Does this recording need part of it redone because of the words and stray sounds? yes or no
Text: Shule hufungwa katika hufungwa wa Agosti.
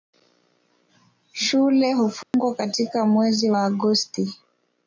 yes